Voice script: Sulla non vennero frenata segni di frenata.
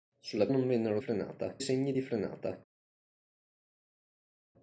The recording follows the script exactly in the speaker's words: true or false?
true